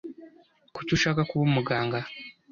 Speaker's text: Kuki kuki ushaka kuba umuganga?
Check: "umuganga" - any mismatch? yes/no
no